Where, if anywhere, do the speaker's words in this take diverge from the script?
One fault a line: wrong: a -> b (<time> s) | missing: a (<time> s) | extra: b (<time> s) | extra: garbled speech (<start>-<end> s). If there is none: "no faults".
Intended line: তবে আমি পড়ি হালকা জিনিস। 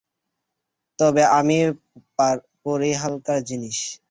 no faults